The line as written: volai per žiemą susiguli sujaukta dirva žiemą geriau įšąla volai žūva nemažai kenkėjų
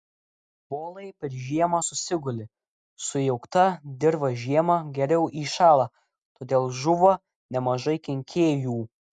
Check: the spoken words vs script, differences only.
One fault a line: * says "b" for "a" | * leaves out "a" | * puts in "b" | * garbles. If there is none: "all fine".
* says "todėl" for "volai"